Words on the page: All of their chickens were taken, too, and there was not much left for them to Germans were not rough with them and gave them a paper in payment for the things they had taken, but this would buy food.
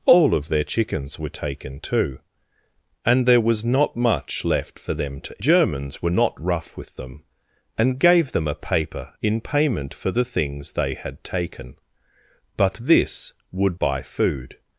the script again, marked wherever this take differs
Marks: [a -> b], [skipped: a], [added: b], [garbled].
All of their chickens were taken, too, and there was not much left for them to Germans were not rough with them and gave them a paper in payment for the things they had taken, but this would buy food.